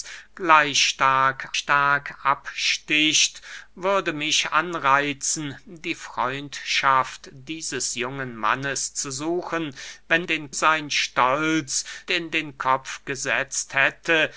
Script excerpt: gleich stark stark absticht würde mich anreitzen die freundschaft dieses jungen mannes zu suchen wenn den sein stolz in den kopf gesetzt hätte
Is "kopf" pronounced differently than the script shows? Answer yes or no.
no